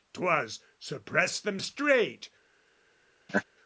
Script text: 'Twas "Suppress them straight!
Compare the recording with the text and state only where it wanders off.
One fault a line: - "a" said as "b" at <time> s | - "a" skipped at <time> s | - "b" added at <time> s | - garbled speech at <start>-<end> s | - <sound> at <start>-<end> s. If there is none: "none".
- laugh at 3.3-3.4 s